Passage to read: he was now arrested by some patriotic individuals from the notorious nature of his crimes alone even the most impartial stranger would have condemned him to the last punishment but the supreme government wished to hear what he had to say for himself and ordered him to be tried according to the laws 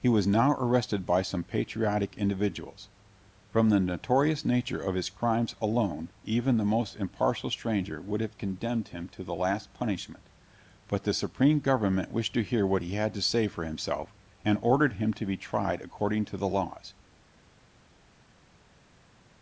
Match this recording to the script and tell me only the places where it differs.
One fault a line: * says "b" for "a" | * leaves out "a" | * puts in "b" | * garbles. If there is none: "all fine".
all fine